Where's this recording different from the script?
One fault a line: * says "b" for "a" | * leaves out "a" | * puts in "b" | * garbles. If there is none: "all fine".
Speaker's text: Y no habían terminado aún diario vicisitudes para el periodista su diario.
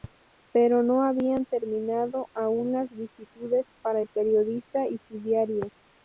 * says "Pero" for "Y"
* says "las" for "diario"
* puts in "y"